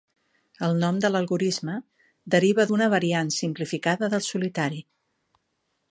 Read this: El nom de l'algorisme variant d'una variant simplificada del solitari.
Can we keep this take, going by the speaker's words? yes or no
no